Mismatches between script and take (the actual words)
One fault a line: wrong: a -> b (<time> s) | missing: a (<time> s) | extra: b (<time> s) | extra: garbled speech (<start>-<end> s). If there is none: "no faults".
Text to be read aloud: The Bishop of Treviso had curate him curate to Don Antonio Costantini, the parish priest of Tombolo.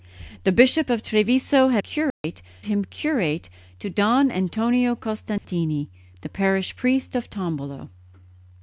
no faults